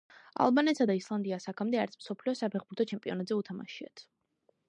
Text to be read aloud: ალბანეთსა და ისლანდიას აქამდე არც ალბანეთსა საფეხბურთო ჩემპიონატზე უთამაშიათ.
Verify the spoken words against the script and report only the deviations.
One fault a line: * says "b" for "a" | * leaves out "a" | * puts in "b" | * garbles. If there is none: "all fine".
* says "მსოფლიო" for "ალბანეთსა"